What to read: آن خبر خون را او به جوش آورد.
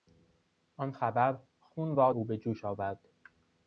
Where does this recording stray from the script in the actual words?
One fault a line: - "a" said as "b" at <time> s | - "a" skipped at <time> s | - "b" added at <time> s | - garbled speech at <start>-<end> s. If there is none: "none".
none